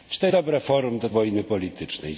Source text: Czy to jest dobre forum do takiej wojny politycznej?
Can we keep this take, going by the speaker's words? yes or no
no